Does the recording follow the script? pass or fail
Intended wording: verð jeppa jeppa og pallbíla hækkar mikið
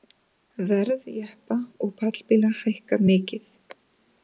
fail